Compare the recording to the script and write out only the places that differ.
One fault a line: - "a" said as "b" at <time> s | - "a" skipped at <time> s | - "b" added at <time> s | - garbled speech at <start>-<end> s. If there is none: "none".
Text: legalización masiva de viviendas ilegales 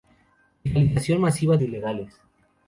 - "de viviendas" skipped at 1.6 s